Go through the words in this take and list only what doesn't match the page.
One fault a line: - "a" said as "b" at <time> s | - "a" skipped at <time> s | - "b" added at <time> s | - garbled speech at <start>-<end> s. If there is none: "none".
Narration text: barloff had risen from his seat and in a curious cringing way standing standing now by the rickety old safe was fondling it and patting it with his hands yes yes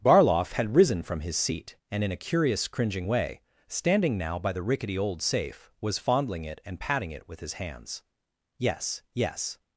- "standing" skipped at 4.2 s